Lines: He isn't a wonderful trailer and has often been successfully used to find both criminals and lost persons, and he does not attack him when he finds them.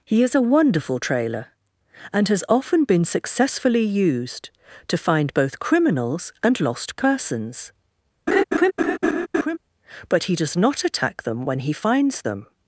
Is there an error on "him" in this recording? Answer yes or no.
yes